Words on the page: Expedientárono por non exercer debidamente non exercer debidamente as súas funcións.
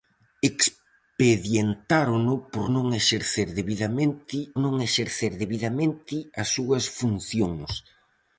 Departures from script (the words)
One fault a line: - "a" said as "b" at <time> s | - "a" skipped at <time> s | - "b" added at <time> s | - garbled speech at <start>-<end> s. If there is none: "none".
none